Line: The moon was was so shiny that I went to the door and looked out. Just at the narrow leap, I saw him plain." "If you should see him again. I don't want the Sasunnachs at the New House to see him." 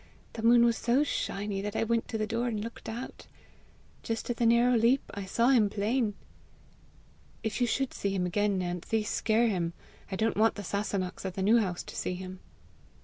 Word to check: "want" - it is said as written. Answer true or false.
true